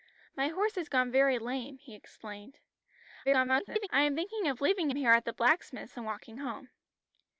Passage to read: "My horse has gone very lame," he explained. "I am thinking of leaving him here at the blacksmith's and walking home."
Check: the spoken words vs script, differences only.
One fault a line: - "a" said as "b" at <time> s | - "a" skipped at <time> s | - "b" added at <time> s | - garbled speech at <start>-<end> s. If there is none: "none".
- garbled speech at 3.2-3.9 s
- "him" skipped at 4.9 s